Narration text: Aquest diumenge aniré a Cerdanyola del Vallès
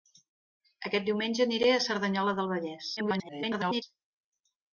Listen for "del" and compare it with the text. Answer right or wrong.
right